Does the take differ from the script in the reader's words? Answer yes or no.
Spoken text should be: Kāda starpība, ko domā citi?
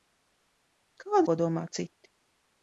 yes